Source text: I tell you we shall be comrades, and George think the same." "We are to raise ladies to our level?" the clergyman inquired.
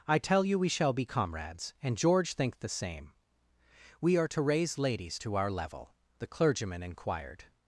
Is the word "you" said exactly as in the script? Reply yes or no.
yes